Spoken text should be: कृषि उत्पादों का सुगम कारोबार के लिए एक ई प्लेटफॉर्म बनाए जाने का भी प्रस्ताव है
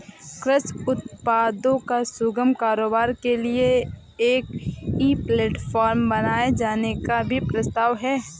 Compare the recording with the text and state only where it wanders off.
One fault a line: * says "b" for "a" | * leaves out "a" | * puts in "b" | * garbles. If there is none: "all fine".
all fine